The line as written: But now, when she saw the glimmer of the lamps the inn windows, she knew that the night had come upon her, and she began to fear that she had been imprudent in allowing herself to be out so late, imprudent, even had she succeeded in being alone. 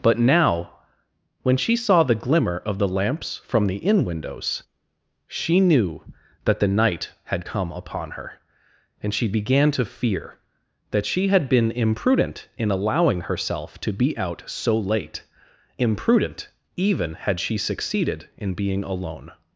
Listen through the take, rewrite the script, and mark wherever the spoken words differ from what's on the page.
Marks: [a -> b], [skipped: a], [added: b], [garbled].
But now, when she saw the glimmer of the lamps [added: from] the inn windows, she knew that the night had come upon her, and she began to fear that she had been imprudent in allowing herself to be out so late, imprudent, even had she succeeded in being alone.